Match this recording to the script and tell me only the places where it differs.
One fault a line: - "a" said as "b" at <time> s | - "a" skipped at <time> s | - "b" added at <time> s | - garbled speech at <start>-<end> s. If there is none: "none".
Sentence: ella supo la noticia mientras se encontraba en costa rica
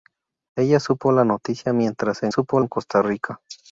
- "encontraba" said as "supo" at 2.3 s